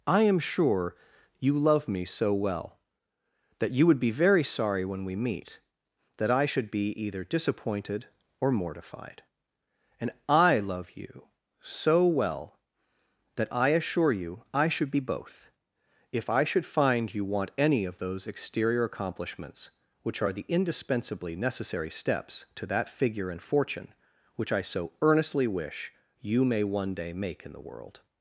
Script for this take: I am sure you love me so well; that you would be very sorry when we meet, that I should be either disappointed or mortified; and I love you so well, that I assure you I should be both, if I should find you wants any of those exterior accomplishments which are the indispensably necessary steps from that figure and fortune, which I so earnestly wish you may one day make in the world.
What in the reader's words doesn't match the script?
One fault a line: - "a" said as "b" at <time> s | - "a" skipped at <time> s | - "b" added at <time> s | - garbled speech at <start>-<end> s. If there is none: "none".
- "wants" said as "want" at 17.2 s
- "from" said as "to" at 22.5 s